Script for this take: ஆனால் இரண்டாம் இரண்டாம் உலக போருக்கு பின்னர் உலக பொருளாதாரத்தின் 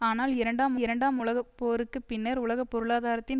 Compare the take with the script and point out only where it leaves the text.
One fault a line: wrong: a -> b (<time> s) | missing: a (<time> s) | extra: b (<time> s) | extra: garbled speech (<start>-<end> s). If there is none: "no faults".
no faults